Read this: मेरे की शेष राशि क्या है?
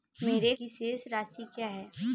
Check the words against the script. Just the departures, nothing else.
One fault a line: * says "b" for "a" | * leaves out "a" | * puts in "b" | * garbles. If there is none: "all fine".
all fine